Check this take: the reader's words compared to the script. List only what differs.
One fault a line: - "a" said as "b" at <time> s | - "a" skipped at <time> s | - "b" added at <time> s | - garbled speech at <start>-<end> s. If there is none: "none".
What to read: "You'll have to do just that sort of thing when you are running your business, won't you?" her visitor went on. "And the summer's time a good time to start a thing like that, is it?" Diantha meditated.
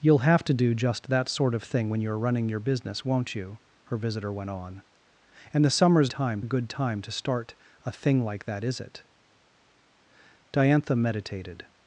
none